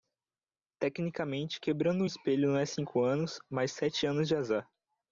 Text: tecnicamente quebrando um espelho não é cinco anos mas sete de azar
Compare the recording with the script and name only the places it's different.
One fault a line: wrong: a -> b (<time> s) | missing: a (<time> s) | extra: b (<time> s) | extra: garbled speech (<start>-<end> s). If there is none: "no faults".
extra: anos (4.1 s)